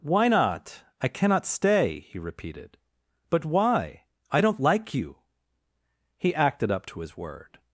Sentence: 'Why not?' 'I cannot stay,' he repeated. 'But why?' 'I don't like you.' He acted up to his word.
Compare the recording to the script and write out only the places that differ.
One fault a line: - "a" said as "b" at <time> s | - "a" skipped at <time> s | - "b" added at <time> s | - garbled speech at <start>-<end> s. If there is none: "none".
none